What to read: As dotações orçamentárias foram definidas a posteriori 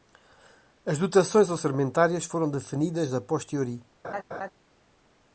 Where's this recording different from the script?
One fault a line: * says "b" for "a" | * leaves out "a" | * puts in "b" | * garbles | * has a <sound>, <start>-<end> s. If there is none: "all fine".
* has a laugh, 4.0-4.5 s